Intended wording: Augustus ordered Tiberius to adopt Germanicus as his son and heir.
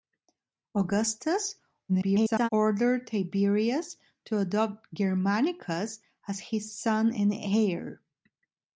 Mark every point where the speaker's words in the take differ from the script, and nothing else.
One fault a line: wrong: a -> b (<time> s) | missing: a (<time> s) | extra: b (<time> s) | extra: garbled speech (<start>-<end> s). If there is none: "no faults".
extra: garbled speech (1.9-2.5 s)